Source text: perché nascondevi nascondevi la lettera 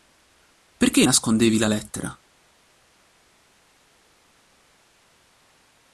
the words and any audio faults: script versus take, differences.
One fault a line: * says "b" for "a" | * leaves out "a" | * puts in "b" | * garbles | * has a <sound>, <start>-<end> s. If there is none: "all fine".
* leaves out "nascondevi"